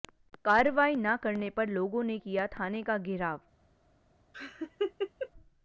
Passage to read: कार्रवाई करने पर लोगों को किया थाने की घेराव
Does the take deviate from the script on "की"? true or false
true